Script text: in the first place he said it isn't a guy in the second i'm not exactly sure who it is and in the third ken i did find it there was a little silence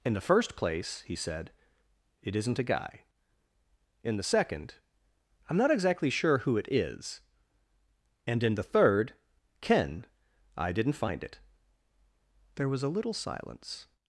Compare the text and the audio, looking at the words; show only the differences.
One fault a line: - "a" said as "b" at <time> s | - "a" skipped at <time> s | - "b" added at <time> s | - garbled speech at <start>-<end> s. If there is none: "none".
- "did" said as "didn't" at 10.7 s